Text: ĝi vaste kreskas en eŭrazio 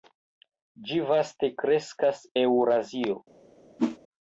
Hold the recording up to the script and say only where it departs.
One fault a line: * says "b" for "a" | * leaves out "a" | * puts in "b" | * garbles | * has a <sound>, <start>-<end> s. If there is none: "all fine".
* leaves out "en"
* has a whoosh, 3.8-4.0 s